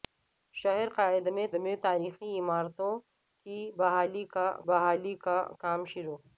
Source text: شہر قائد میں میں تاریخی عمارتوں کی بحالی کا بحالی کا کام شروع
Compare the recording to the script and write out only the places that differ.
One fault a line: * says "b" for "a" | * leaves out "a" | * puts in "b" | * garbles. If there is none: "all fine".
all fine